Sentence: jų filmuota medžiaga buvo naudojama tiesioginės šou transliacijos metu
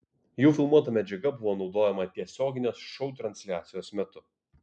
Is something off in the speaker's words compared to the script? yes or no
no